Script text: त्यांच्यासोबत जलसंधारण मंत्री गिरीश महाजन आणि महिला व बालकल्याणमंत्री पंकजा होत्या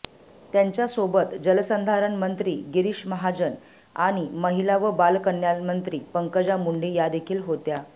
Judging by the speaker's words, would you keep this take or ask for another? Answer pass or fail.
fail